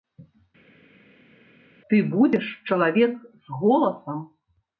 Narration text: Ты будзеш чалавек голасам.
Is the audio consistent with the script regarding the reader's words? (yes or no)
no